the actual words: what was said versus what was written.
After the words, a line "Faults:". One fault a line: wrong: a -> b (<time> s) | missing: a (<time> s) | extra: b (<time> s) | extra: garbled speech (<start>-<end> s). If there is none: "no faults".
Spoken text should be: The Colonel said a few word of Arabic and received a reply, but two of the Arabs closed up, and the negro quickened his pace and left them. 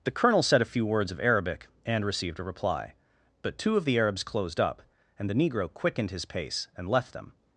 The Colonel said a few words of Arabic and received a reply, but two of the Arabs closed up, and the negro quickened his pace and left them.
Faults:
wrong: word -> words (0.8 s)